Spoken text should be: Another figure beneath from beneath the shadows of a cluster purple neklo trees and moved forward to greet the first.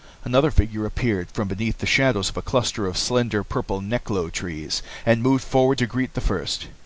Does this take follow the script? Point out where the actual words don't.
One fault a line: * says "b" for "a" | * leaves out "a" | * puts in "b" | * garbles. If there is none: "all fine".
* says "appeared" for "beneath"
* puts in "of slender"